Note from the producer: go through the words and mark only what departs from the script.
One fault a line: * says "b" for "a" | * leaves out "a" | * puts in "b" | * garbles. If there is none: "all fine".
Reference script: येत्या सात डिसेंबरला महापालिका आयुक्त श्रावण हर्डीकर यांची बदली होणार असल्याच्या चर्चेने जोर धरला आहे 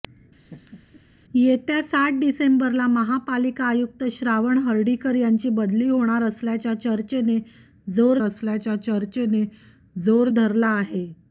* puts in "असल्याच्या चर्चेने जोर"